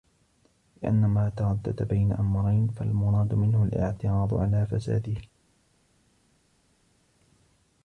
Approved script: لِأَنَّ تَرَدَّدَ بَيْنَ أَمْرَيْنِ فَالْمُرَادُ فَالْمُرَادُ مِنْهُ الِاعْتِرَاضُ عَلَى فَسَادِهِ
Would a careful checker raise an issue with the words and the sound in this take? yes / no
yes